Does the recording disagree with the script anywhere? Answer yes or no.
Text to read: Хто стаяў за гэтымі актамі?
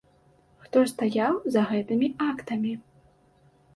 no